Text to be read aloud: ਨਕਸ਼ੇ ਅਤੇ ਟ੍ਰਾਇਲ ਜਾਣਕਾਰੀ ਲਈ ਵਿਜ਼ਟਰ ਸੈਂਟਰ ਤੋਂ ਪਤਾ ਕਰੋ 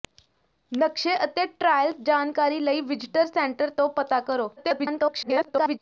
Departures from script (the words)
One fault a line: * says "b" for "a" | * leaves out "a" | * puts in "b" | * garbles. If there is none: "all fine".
* garbles